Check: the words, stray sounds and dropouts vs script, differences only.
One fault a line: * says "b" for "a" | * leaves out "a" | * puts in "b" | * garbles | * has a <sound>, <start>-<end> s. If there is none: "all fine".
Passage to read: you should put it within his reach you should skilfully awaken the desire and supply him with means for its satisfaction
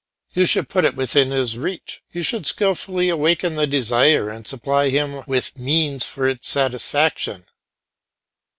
all fine